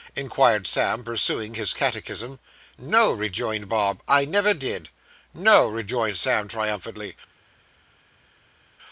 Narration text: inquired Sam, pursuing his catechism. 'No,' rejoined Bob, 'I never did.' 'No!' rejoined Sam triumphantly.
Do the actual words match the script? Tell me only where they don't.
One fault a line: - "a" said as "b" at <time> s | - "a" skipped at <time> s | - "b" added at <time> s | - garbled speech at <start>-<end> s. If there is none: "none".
none